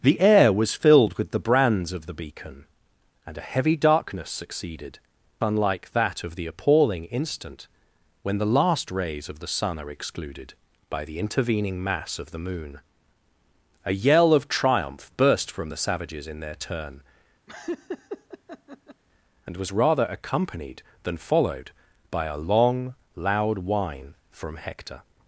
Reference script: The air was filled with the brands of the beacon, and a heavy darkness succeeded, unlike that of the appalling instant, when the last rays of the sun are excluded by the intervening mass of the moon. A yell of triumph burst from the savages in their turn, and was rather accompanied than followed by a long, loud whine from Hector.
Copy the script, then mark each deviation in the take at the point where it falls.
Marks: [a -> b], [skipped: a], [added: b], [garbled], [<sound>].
The air was filled with the brands of the beacon, and a heavy darkness succeeded, unlike that of the appalling instant, when the last rays of the sun are excluded by the intervening mass of the moon. A yell of triumph burst from the savages in their turn, [laugh] and was rather accompanied than followed by a long, loud whine from Hector.